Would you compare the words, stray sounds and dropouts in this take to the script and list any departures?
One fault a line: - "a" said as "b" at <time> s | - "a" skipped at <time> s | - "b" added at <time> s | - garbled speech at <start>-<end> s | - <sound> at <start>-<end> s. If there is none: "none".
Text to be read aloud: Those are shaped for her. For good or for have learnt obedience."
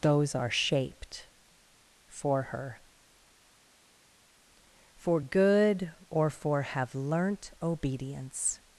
none